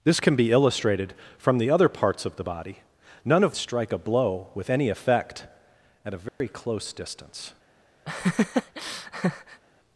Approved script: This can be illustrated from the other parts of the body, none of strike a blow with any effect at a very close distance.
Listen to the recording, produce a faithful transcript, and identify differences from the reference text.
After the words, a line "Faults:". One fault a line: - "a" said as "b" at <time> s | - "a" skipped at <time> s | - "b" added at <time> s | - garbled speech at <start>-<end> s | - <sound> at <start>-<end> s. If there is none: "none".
This can be illustrated from the other parts of the body, none of strike a blow with any effect at a very close distance.
Faults:
- dropout at 6.3-6.4 s
- laugh at 8.1-9.6 s